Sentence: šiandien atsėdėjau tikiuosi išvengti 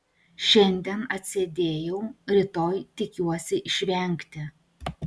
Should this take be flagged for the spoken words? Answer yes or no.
yes